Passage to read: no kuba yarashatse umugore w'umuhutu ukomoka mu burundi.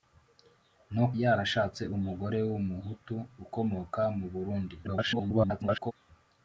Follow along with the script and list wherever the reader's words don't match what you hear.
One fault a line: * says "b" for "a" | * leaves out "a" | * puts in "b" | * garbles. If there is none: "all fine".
* leaves out "kuba"
* garbles